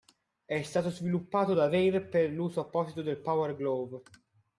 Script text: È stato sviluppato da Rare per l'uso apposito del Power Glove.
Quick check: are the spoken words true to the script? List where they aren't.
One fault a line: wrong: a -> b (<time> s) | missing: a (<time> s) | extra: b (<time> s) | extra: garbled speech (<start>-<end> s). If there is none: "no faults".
no faults